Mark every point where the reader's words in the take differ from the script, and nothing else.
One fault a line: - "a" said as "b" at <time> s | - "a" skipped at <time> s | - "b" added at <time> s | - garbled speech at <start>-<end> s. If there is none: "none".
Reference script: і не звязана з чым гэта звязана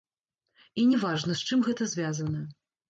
- "звязана" said as "важна" at 1.0 s